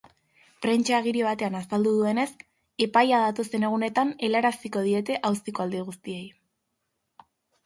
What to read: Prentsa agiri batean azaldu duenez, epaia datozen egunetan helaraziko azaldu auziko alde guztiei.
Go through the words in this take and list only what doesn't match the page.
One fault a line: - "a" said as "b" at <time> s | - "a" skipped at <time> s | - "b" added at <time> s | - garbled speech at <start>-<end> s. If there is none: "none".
- "azaldu" said as "diete" at 4.9 s